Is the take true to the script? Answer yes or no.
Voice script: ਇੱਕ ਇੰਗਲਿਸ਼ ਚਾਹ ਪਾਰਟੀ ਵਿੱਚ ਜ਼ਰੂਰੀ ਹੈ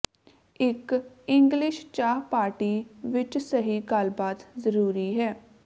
no